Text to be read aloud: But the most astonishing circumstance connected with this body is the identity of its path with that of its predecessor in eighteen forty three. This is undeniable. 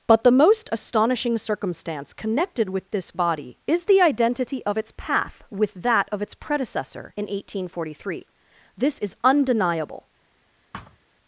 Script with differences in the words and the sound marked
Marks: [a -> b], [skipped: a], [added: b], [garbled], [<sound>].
But the most astonishing circumstance connected with this body is the identity of its path with that of its predecessor in eighteen forty three. This is undeniable. [thud]